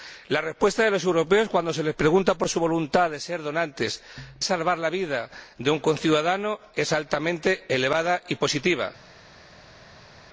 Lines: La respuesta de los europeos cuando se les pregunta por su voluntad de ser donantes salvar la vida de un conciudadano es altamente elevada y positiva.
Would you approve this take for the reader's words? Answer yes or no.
yes